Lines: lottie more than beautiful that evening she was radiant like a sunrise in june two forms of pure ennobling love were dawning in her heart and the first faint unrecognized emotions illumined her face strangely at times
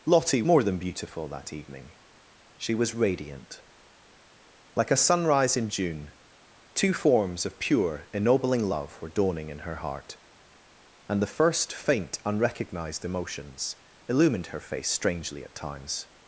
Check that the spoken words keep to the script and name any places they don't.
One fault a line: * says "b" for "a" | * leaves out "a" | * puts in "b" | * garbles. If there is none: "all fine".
all fine